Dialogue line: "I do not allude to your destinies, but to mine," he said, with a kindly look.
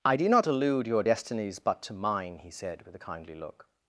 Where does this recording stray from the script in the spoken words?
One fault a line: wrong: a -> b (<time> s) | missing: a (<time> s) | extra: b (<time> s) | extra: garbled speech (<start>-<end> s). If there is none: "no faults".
missing: to (0.9 s)